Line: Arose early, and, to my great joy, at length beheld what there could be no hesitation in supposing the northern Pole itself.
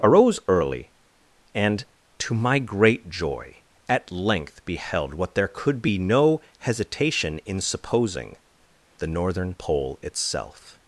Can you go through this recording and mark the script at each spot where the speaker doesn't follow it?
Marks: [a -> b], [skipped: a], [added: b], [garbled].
Arose early, and, to my great joy, at length beheld what there could be no hesitation in supposing the northern Pole itself.